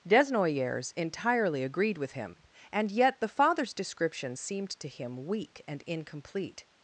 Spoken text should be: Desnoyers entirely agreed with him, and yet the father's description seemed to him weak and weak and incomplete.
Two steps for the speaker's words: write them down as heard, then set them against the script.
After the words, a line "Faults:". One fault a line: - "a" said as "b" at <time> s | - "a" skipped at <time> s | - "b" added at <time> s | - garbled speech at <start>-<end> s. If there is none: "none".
Desnoyers entirely agreed with him, and yet the father's description seemed to him weak and incomplete.
Faults:
- "weak and" skipped at 5.8 s